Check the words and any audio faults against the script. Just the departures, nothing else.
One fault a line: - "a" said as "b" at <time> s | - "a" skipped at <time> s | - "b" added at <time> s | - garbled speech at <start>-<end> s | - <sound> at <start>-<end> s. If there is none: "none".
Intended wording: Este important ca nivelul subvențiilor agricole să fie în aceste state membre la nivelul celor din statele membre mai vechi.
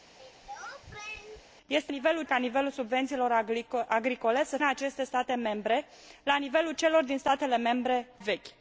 - throat clearing at 0.2-1.5 s
- "important" said as "nivelul" at 1.9 s
- "fie" skipped at 4.6 s
- "mai" skipped at 8.1 s